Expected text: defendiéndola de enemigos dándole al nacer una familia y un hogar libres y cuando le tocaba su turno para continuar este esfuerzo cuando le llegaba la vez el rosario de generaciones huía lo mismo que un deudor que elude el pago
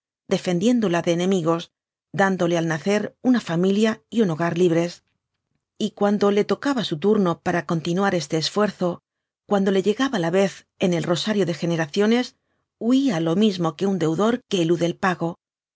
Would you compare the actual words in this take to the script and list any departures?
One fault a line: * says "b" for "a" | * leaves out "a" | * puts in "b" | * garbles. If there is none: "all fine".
* puts in "en"